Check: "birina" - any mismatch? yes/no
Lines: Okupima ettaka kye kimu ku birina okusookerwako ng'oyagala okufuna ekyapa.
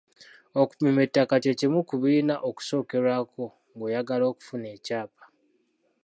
no